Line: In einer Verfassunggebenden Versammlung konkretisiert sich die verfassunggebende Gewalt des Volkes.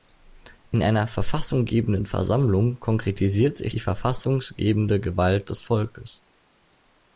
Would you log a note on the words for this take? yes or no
no